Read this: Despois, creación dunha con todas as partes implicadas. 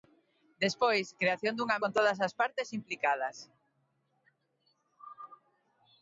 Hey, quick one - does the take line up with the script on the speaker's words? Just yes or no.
yes